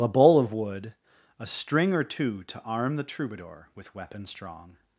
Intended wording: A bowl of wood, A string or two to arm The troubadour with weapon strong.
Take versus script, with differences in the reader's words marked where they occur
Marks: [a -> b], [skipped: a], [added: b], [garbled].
A bowl of wood, A string or two to arm The troubadour with weapon strong.